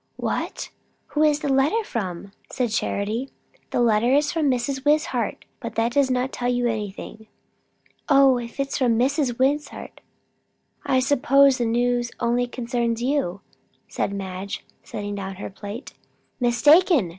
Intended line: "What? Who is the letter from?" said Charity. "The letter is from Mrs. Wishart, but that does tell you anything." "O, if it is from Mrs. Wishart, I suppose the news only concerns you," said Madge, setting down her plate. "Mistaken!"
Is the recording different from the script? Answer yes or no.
yes